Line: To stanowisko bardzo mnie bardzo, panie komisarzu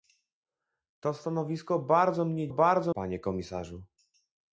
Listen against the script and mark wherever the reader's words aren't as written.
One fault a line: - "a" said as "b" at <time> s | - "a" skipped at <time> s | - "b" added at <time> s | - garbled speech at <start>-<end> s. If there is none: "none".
none